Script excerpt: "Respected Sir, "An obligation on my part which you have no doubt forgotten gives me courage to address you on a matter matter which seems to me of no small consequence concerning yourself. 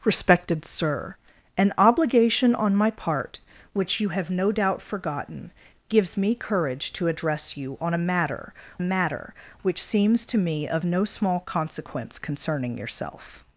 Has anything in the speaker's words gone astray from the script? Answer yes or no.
no